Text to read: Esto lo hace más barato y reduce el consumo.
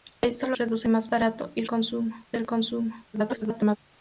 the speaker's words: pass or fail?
fail